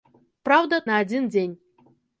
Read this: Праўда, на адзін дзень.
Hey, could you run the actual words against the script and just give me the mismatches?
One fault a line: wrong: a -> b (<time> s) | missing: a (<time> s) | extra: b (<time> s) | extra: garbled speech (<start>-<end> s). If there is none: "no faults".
no faults